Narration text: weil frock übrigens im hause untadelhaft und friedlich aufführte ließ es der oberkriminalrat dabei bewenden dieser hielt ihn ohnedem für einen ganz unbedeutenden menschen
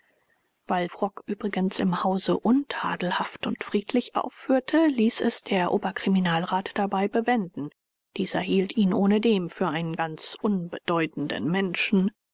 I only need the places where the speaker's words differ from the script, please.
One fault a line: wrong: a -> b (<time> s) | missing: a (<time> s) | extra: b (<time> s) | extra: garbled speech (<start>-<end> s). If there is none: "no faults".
no faults